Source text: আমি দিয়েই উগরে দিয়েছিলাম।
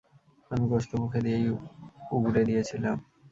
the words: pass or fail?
fail